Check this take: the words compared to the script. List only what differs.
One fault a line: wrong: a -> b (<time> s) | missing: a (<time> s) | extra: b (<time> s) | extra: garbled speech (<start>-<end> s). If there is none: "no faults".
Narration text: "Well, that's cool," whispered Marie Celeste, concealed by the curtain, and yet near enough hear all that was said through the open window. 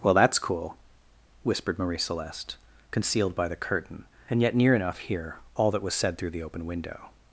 no faults